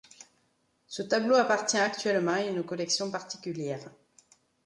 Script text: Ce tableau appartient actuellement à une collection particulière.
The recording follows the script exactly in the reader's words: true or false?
true